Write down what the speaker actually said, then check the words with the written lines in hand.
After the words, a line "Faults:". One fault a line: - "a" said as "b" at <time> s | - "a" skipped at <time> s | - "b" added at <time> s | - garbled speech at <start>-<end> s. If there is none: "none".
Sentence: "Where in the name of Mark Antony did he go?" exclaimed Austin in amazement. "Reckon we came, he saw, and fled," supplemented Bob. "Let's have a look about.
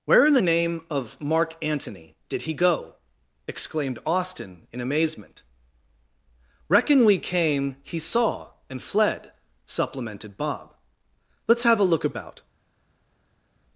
"Where in the name of Mark Antony did he go?" exclaimed Austin in amazement. "Reckon we came, he saw, and fled," supplemented Bob. "Let's have a look about.
Faults:
none